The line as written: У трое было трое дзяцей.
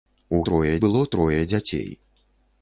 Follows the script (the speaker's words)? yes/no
yes